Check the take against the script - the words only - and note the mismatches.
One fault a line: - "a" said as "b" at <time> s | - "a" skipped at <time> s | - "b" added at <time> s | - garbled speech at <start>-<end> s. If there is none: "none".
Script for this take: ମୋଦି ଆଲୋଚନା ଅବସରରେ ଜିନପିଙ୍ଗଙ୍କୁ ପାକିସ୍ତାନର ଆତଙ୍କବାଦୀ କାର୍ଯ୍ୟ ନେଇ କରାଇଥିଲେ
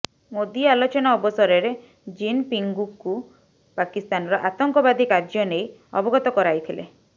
- "ଅବଗତ" added at 6.0 s